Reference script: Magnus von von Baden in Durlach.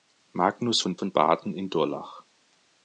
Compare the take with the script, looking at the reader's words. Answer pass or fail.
pass